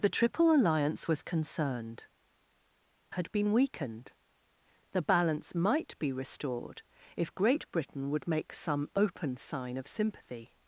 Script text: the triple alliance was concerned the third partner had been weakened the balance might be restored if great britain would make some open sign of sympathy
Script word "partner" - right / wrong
wrong